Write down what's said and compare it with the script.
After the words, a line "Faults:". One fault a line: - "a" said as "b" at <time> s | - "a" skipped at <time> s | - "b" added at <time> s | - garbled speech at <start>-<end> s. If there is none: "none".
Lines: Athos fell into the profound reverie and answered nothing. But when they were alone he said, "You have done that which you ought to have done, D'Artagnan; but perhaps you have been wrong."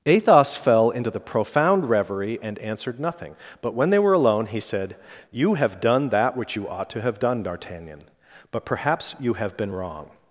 Athos fell into the profound reverie and answered nothing. But when they were alone he said, "You have done that which you ought to have done, D'Artagnan; but perhaps you have been wrong."
Faults:
none